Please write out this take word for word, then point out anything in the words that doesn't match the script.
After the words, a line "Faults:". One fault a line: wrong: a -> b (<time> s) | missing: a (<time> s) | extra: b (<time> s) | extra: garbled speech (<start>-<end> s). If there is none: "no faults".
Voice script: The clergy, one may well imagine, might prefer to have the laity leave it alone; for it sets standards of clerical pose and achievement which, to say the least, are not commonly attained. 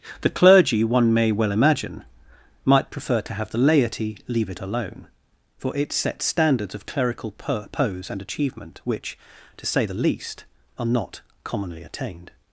The clergy, one may well imagine, might prefer to have the laity leave it alone; for it sets standards of clerical pose and achievement which, to say the least, are not commonly attained.
Faults:
no faults